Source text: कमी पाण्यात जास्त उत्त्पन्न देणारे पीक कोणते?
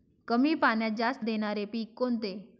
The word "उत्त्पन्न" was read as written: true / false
false